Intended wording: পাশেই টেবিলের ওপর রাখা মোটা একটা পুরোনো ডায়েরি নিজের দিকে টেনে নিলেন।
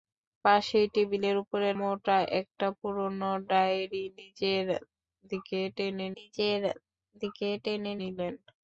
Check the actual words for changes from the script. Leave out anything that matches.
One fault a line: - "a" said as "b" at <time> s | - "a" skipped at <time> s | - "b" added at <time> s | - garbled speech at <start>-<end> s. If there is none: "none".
- "রাখা" skipped at 1.6 s
- "নিজের দিকে টেনে" added at 6.2 s